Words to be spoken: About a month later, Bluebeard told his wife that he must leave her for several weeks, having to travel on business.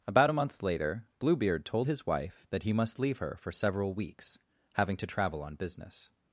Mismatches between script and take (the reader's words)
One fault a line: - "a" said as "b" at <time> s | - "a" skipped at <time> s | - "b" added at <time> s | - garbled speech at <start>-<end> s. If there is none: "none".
none